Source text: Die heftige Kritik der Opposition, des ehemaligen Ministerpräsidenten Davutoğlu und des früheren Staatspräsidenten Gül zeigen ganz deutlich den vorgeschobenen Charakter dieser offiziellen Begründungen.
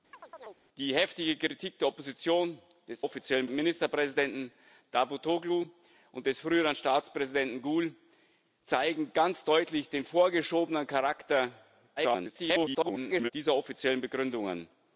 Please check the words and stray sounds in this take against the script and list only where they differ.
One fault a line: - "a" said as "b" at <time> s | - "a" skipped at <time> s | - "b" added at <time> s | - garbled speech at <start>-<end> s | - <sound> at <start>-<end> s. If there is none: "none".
- chirp at 0.1-0.6 s
- "ehemaligen" said as "offiziellen" at 3.0 s
- garbled speech at 12.0-13.3 s